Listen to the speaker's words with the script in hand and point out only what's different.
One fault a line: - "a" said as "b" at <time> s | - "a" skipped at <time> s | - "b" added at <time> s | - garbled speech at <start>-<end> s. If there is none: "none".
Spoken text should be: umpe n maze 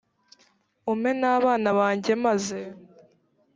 - "abana banjye" added at 1.4 s